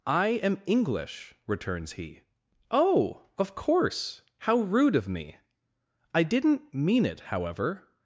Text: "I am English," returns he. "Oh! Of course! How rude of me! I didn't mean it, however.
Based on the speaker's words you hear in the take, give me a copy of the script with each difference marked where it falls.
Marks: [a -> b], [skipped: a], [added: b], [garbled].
"I am English," returns he. "Oh! Of course! How rude of me! I didn't mean it, however.